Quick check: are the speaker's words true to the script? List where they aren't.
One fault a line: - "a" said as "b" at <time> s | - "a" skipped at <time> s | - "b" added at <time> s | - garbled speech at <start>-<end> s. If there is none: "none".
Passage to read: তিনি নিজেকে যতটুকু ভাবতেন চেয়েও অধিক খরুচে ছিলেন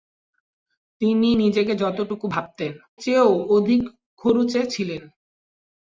none